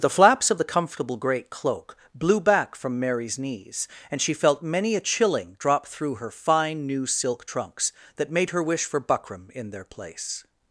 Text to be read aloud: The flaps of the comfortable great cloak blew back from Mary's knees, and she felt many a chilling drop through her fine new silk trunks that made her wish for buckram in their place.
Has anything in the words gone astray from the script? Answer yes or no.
no